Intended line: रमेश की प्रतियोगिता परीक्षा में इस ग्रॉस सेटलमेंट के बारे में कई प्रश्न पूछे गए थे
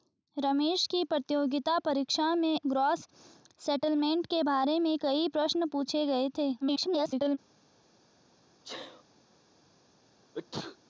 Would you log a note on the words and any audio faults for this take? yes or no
yes